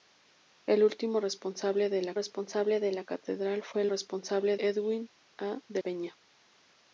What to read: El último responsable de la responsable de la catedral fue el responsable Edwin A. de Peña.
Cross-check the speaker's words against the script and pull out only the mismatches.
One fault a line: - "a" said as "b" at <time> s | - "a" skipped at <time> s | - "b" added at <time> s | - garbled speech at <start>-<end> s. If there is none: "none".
none